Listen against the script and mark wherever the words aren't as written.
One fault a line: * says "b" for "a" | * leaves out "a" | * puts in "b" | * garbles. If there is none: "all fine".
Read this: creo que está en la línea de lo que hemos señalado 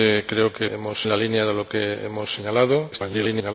* says "hemos" for "está"
* garbles